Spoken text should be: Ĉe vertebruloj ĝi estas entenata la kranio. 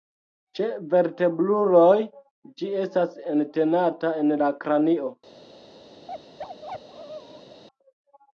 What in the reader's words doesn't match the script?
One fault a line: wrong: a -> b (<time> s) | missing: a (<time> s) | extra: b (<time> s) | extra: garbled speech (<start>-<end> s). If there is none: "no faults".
extra: en (4.2 s)